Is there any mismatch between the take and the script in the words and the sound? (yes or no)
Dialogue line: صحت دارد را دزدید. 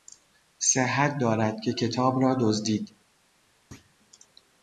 yes